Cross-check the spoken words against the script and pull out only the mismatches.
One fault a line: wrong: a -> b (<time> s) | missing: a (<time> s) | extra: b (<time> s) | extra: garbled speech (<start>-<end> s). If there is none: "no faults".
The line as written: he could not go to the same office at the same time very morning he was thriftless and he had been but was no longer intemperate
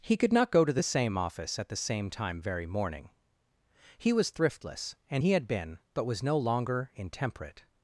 no faults